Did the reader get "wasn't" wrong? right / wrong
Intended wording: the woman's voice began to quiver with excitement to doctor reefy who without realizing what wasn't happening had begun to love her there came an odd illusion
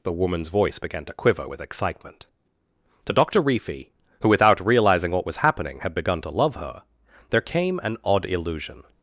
wrong